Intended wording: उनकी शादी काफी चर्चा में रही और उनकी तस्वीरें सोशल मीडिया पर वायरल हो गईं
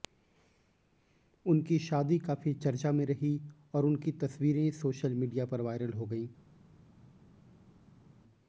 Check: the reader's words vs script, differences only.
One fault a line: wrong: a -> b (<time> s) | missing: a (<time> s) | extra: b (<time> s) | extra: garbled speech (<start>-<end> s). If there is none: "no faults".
no faults